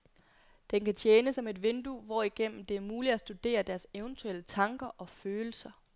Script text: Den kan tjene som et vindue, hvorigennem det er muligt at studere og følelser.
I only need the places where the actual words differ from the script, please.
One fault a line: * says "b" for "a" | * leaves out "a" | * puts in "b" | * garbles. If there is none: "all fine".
* puts in "deres eventuelle tanker"